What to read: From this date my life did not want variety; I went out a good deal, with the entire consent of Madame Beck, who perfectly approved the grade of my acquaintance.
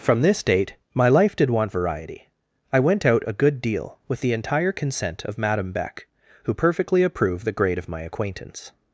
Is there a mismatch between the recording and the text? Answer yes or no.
yes